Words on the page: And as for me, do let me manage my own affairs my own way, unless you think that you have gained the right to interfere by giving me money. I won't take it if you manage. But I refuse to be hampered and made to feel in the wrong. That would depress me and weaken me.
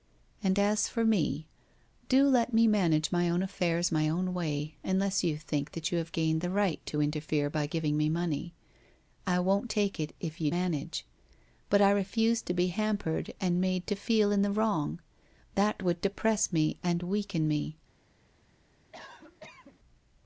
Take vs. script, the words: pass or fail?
pass